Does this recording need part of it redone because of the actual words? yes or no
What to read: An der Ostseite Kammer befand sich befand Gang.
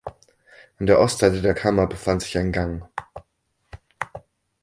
yes